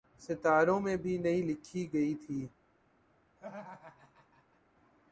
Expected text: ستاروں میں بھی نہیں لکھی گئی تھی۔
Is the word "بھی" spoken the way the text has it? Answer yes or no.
yes